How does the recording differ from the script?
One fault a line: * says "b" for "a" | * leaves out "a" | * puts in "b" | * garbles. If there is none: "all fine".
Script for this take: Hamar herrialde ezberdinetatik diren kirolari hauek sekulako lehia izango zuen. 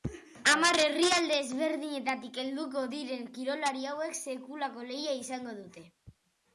* puts in "helduko"
* says "dute" for "zuen"